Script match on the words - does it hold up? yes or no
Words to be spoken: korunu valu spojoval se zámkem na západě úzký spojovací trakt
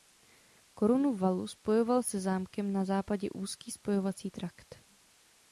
yes